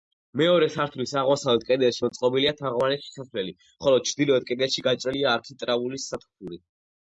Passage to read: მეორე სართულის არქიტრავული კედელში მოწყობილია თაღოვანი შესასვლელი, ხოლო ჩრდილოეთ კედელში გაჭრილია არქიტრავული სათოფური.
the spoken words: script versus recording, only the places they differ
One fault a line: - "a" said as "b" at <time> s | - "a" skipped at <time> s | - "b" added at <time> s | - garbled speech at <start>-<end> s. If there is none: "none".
- "არქიტრავული" said as "აღმოსავლეთ" at 1.2 s